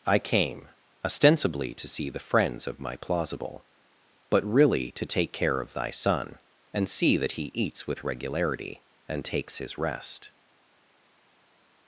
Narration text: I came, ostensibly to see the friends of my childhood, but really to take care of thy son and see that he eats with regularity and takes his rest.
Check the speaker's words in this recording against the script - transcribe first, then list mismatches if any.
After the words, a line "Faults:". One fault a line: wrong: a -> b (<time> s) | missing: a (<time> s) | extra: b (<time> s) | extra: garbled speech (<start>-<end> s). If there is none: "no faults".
I came, ostensibly to see the friends of my plausible, but really to take care of thy son and see that he eats with regularity and takes his rest.
Faults:
wrong: childhood -> plausible (3.0 s)